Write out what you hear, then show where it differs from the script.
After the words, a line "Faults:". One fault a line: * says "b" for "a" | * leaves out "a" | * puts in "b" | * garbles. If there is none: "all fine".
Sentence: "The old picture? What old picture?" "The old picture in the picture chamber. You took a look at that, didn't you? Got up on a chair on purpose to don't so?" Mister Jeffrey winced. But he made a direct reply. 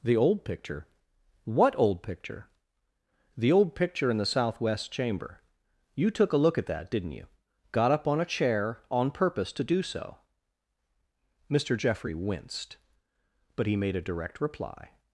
"The old picture? What old picture?" "The old picture in the southwest chamber. You took a look at that, didn't you? Got up on a chair on purpose to do so?" Mister Jeffrey winced. But he made a direct reply.
Faults:
* says "southwest" for "picture"
* says "do" for "don't"